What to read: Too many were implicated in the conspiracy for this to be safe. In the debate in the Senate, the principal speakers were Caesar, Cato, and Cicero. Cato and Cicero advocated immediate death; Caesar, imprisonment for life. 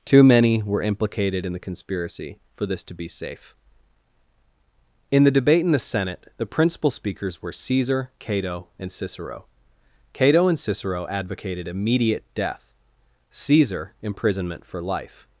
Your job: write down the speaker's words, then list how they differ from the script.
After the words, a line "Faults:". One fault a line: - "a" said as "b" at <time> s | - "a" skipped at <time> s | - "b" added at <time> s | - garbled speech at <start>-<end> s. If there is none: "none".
Too many were implicated in the conspiracy for this to be safe. In the debate in the Senate, the principal speakers were Caesar, Cato, and Cicero. Cato and Cicero advocated immediate death; Caesar, imprisonment for life.
Faults:
none